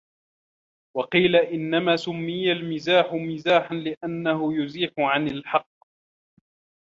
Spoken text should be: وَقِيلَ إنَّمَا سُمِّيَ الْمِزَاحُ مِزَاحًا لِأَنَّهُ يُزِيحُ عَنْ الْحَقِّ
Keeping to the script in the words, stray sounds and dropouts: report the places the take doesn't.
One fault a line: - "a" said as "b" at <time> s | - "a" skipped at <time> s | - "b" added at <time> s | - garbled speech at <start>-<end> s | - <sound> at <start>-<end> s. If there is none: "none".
none